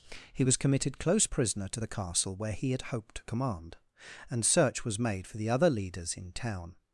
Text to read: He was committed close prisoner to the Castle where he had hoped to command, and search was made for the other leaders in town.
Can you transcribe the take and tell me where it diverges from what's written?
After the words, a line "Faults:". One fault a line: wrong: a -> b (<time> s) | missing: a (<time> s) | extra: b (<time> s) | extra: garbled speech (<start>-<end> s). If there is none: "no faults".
He was committed close prisoner to the Castle where he had hoped to command, and search was made for the other leaders in town.
Faults:
no faults